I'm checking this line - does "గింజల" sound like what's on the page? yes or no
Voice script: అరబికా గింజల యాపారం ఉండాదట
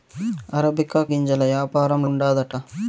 yes